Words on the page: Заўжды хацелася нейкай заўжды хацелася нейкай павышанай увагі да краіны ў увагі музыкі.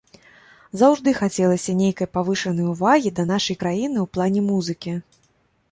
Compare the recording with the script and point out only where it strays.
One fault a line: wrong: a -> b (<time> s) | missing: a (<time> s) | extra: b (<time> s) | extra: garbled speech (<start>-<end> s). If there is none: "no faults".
missing: заўжды хацелася нейкай (2.1 s)
extra: нашай (3.3 s)
wrong: увагі -> плане (4.2 s)